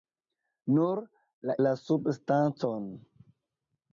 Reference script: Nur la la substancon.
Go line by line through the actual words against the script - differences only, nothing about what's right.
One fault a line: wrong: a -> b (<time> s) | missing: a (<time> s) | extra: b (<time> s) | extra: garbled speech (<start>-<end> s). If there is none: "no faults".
no faults